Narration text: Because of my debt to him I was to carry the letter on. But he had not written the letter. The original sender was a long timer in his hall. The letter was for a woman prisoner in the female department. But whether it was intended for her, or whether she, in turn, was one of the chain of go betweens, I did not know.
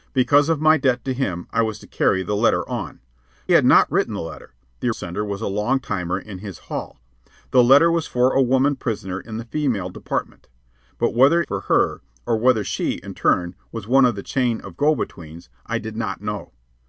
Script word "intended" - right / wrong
wrong